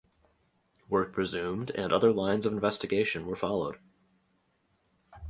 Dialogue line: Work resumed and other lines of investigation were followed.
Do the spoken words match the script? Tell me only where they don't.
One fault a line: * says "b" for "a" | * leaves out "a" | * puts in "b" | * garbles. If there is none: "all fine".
all fine